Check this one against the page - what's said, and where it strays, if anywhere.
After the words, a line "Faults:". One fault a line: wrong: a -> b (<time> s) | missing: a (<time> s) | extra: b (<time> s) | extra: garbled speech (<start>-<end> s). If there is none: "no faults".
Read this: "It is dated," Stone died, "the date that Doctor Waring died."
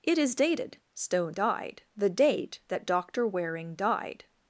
"It is dated," Stone died, "the date that Doctor Waring died."
Faults:
no faults